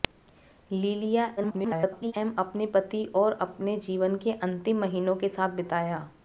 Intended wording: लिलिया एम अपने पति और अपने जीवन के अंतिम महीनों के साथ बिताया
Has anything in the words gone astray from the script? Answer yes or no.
yes